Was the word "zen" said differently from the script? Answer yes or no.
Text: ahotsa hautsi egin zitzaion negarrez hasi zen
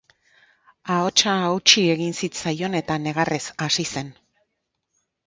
no